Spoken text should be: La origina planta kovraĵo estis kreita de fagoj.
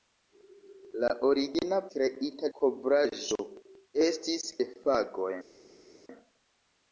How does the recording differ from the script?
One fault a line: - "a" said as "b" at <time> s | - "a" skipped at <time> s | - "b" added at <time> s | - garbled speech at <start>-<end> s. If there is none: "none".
- "planta" said as "kreita" at 2.0 s
- "kreita" skipped at 4.5 s